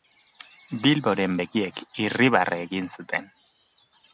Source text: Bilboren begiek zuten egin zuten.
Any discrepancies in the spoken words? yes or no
yes